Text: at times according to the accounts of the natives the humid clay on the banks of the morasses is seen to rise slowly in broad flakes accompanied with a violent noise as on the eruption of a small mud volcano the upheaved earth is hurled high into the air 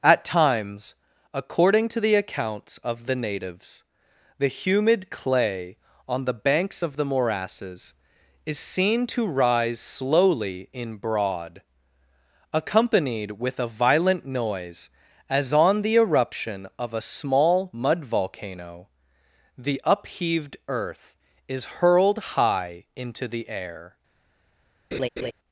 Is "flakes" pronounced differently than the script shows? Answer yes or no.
yes